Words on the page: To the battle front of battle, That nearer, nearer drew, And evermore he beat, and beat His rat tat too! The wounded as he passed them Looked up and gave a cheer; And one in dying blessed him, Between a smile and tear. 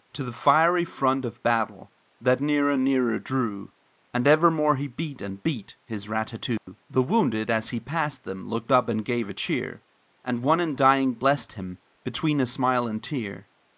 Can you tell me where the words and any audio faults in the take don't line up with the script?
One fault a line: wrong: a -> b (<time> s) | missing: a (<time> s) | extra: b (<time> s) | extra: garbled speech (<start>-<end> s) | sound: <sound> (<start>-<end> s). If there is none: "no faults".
wrong: battle -> fiery (0.3 s)
sound: dropout (6.6-6.7 s)